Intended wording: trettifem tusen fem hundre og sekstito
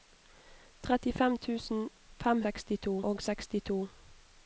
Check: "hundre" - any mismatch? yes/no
yes